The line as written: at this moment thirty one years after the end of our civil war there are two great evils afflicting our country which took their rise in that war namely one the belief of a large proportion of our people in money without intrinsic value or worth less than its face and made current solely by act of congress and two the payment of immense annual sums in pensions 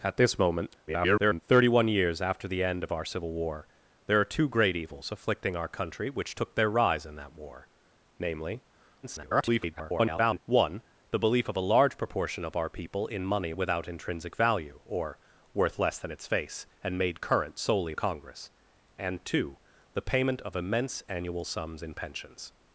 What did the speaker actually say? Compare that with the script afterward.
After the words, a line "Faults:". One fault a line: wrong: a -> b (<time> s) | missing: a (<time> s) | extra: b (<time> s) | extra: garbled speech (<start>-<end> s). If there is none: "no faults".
at this moment [garbled] thirty one years after the end of our civil war there are two great evils afflicting our country which took their rise in that war namely [garbled] one the belief of a large proportion of our people in money without intrinsic value or worth less than its face and made current solely congress and two the payment of immense annual sums in pensions
Faults:
extra: garbled speech (0.9-1.4 s)
extra: garbled speech (9.0-10.4 s)
missing: by act of (17.9 s)